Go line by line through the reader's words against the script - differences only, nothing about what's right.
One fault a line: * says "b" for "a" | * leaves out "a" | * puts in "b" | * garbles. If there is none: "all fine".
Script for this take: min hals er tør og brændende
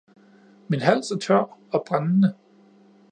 all fine